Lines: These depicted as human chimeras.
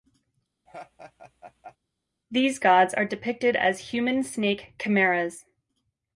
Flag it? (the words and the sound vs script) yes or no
yes